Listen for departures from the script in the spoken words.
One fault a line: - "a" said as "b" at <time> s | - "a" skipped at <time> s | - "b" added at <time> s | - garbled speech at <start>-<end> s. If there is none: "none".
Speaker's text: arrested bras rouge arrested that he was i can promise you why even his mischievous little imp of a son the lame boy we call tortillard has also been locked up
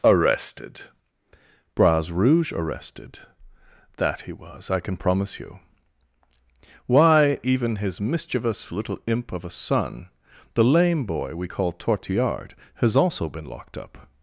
none